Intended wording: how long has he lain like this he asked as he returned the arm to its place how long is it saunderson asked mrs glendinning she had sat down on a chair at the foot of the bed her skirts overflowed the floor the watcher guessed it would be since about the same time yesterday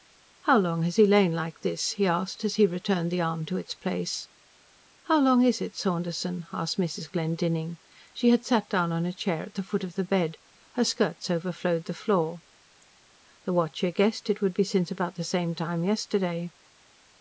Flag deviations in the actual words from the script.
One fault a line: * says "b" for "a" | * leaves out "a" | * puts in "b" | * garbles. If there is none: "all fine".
all fine